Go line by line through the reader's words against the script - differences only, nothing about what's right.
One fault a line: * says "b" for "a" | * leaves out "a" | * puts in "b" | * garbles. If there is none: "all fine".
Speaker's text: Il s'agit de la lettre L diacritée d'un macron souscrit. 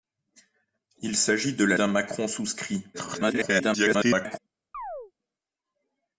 * leaves out "lettre L diacritée"
* garbles